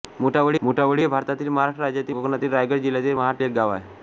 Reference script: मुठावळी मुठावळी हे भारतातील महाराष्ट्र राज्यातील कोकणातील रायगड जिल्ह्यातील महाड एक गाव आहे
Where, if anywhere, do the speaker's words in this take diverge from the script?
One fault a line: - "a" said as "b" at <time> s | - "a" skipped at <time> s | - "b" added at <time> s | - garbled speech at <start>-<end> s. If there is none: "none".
none